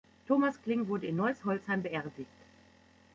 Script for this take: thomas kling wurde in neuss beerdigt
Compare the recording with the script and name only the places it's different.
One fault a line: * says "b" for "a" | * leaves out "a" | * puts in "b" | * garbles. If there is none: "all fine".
* puts in "holzheim"